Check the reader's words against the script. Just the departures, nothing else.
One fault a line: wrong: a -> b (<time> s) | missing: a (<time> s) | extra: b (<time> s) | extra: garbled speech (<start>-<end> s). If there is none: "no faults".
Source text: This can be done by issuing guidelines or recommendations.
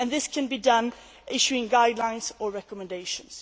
no faults